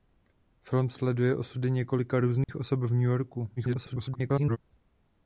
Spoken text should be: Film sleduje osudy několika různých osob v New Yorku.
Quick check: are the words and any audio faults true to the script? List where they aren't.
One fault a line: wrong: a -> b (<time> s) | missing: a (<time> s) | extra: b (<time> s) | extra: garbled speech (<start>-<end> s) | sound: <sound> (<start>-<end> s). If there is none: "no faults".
sound: dropout (2.4-2.5 s)
extra: garbled speech (3.6-4.6 s)